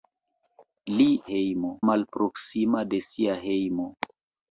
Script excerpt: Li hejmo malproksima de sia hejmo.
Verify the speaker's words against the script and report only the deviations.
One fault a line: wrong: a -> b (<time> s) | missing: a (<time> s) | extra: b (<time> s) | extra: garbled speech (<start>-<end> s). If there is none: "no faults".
no faults